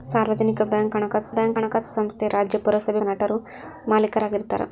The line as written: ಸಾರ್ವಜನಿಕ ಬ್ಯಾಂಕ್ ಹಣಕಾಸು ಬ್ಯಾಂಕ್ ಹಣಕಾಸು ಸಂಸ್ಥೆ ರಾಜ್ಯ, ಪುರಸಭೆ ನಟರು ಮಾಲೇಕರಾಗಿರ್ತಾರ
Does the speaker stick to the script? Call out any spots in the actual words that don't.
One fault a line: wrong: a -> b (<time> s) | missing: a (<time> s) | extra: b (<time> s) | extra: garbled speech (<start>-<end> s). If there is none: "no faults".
no faults